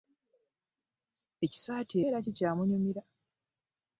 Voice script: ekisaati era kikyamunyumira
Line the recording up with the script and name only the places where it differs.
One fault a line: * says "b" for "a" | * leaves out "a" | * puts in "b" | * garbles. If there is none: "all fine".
all fine